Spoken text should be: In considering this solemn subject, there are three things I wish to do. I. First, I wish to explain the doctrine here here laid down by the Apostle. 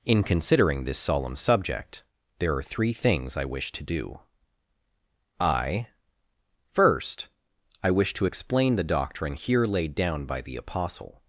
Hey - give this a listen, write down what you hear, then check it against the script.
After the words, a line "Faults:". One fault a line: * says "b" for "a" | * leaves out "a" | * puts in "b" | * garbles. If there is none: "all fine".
In considering this solemn subject, there are three things I wish to do. I. First, I wish to explain the doctrine here laid down by the Apostle.
Faults:
* leaves out "here"